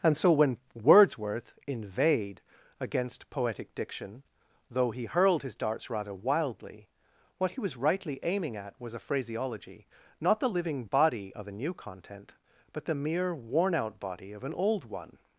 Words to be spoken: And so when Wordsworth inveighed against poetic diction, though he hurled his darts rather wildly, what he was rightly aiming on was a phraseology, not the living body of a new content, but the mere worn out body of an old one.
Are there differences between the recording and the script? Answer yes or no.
yes